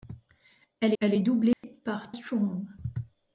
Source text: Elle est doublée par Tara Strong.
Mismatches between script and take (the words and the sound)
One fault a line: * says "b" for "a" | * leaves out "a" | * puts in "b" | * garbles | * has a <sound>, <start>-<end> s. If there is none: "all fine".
* puts in "elle"
* has a dropout, 1.5-1.6 s
* leaves out "Tara"